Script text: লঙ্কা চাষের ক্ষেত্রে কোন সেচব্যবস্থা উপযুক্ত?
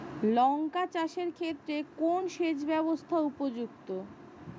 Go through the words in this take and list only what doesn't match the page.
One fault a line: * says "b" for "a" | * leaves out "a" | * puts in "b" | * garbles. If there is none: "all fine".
all fine